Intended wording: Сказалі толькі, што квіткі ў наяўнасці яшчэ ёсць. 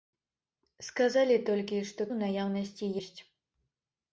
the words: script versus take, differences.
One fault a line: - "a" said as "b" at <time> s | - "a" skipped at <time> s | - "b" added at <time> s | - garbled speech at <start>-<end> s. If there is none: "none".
- "квіткі" skipped at 2.0 s
- "яшчэ" skipped at 2.9 s